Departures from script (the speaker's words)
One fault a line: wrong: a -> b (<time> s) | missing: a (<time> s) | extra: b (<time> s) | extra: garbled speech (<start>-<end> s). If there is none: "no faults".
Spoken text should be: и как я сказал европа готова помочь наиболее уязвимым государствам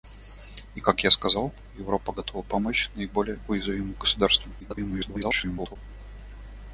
extra: garbled speech (4.6-5.8 s)